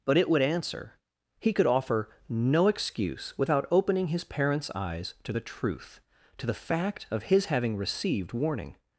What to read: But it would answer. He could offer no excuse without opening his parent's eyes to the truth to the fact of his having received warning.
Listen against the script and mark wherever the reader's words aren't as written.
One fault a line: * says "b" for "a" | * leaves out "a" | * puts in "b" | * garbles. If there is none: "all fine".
all fine